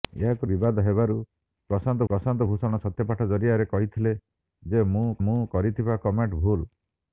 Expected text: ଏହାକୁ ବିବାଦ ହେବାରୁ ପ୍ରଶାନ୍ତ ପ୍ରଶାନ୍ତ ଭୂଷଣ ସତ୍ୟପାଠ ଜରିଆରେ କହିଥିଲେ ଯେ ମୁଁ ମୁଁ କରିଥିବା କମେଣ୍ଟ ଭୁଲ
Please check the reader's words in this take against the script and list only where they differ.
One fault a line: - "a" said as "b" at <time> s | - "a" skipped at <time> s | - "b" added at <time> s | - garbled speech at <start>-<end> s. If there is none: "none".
none